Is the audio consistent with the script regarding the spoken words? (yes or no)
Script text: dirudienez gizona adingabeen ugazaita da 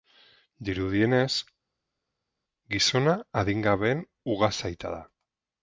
yes